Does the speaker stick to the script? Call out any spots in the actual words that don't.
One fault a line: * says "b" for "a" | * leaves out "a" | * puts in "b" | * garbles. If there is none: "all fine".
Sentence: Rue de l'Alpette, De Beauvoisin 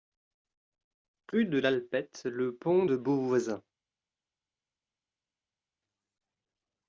* puts in "Le Pont"